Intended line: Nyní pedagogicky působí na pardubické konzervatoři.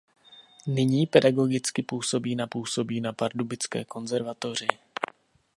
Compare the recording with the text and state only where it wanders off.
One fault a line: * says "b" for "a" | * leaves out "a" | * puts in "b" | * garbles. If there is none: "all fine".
* puts in "působí na"